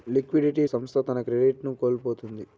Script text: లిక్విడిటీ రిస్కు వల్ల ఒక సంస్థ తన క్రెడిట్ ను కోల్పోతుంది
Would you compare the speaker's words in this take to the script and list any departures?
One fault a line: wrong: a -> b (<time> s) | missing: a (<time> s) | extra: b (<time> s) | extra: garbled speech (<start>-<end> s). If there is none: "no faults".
missing: రిస్కు వల్ల ఒక (0.7 s)